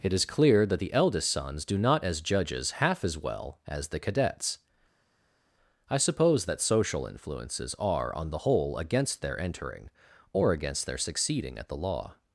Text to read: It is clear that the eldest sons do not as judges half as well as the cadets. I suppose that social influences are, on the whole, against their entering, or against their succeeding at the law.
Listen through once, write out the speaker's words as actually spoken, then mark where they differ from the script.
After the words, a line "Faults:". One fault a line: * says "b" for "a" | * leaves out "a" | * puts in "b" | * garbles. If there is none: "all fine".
It is clear that the eldest sons do not as judges half as well as the cadets. I suppose that social influences are, on the whole, against their entering, or against their succeeding at the law.
Faults:
all fine